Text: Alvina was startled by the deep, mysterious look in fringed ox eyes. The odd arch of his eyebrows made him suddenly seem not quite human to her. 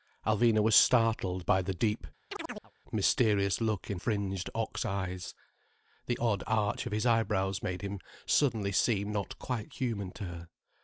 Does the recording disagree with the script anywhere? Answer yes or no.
no